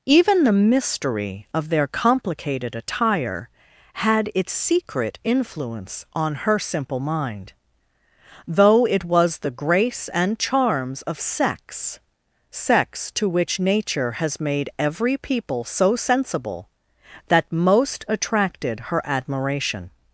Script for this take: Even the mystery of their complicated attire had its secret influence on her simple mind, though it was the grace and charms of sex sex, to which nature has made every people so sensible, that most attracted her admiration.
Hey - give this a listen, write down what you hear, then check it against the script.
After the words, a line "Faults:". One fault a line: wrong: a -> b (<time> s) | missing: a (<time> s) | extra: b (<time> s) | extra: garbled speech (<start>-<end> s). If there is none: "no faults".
Even the mystery of their complicated attire had its secret influence on her simple mind, though it was the grace and charms of sex sex, to which nature has made every people so sensible, that most attracted her admiration.
Faults:
no faults